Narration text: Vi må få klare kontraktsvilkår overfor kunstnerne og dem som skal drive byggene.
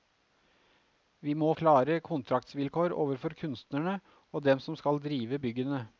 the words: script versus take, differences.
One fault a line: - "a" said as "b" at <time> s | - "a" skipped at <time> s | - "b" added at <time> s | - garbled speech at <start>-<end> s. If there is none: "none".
- "få" skipped at 1.5 s